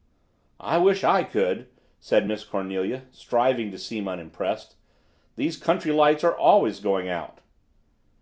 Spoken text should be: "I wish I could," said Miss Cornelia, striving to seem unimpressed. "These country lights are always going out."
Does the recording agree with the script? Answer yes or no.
yes